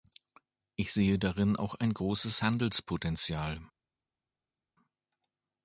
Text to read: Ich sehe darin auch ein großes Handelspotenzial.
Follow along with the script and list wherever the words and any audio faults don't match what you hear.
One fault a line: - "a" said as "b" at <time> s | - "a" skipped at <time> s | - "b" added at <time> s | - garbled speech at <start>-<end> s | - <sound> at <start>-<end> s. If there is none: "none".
none